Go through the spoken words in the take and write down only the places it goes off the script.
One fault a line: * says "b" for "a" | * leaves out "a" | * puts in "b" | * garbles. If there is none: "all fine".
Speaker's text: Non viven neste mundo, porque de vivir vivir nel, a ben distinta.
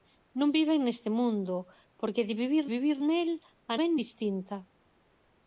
all fine